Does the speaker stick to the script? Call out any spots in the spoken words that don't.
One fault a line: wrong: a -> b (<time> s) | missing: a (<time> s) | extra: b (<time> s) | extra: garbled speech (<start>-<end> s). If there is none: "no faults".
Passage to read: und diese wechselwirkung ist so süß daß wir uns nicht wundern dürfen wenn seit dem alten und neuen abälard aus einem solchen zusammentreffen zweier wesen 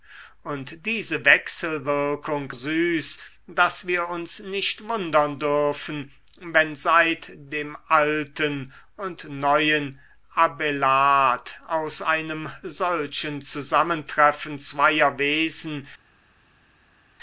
missing: ist so (2.5 s)